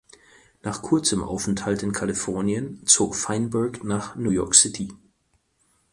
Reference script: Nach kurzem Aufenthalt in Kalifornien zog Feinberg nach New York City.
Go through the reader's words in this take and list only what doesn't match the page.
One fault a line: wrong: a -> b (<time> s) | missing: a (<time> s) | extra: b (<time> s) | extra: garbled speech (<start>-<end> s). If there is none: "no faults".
no faults